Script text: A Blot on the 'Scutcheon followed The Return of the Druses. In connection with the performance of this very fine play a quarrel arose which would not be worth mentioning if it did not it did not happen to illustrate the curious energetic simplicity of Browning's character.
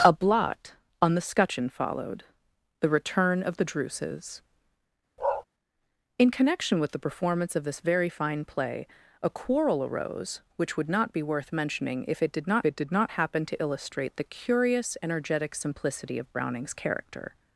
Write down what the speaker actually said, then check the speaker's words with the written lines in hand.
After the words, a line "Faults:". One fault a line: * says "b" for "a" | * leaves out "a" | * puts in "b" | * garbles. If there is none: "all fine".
A Blot on the 'Scutcheon followed The Return of the Druses. In connection with the performance of this very fine play a quarrel arose which would not be worth mentioning if it did not it did not happen to illustrate the curious energetic simplicity of Browning's character.
Faults:
all fine